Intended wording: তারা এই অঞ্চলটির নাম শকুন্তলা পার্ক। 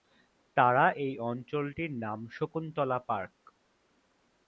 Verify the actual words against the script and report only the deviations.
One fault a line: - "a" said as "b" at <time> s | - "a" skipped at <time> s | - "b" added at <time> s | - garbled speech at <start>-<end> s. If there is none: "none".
none